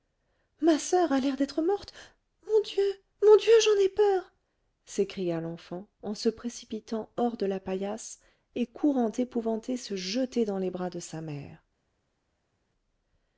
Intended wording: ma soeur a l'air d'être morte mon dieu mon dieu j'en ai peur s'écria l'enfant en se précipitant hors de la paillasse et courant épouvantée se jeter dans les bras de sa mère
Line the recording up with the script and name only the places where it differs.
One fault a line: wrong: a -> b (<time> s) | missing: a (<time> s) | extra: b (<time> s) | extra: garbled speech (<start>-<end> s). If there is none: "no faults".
no faults